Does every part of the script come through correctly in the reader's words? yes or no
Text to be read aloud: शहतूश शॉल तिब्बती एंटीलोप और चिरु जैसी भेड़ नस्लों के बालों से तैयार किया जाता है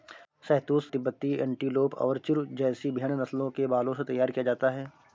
no